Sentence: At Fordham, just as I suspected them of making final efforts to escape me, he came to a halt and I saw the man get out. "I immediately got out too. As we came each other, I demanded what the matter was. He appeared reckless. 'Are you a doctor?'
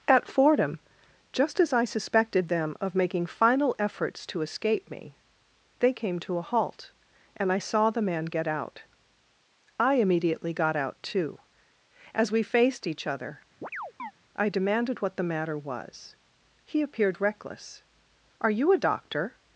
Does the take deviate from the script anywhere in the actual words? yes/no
yes